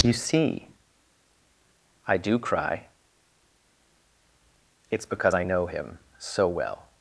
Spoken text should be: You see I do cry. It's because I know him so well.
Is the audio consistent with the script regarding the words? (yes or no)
yes